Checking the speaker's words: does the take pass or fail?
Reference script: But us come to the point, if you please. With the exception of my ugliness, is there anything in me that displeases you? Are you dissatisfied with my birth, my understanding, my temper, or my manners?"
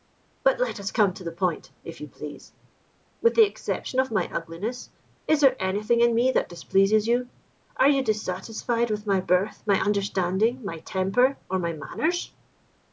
fail